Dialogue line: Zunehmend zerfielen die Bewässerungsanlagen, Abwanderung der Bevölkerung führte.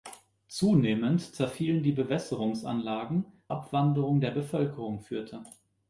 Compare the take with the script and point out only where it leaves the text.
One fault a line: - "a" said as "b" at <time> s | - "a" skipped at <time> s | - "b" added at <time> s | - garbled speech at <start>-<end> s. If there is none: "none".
none